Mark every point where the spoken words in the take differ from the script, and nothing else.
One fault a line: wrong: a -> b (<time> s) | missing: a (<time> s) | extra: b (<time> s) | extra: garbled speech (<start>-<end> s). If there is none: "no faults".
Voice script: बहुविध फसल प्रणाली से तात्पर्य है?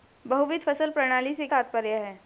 no faults